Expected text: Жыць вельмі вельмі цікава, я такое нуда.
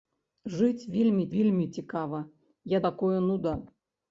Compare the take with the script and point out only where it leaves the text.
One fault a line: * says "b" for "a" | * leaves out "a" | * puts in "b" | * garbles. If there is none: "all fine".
all fine